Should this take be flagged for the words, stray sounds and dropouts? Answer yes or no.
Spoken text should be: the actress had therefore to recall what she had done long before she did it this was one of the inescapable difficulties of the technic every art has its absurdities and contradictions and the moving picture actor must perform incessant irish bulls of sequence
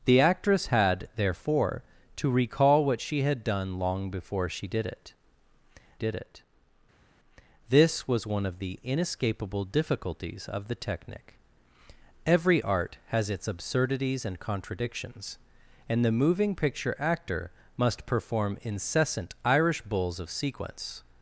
yes